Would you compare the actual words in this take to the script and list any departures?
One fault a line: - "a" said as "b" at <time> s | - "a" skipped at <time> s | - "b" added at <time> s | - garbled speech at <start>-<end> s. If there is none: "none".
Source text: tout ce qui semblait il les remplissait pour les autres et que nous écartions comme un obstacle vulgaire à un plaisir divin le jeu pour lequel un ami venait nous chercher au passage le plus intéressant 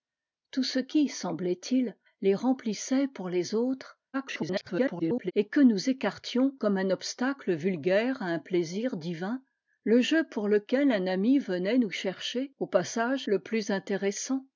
- garbled speech at 4.1-5.3 s